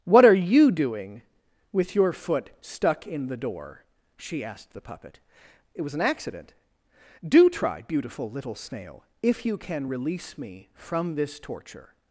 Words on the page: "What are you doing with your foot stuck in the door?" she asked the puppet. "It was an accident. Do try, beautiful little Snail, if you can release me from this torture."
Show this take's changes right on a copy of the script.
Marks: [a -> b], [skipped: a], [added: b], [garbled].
"What are you doing with your foot stuck in the door?" she asked the puppet. "It was an accident. Do try, beautiful little Snail, if you can release me from this torture."